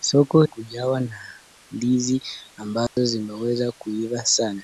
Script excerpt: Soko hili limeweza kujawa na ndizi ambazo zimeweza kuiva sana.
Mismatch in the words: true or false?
true